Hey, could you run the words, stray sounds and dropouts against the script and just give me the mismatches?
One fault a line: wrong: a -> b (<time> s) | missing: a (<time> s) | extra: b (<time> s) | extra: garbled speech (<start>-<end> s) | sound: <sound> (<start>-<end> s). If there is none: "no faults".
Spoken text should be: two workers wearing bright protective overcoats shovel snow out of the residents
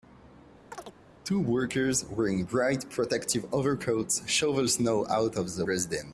sound: chirp (0.7-0.9 s)